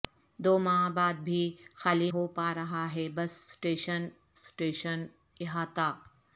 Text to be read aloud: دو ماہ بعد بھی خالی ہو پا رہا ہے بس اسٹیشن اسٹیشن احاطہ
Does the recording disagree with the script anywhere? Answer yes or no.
no